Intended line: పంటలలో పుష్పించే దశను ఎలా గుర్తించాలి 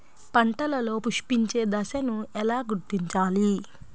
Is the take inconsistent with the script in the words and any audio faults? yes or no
no